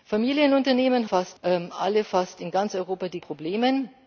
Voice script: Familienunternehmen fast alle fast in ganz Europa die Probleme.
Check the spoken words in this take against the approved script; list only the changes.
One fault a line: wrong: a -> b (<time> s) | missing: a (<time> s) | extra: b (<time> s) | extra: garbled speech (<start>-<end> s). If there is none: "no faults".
no faults